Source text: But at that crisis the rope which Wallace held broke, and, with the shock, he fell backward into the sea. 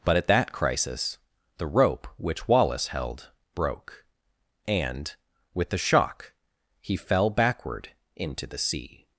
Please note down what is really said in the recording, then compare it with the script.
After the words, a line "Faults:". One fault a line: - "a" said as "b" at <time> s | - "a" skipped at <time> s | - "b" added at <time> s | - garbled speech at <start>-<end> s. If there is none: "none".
But at that crisis the rope which Wallace held broke, and, with the shock, he fell backward into the sea.
Faults:
none